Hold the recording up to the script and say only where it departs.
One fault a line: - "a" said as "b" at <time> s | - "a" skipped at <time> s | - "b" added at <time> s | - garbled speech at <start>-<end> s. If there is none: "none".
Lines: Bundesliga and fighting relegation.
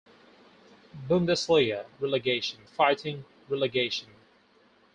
- "and" said as "relegation" at 2.0 s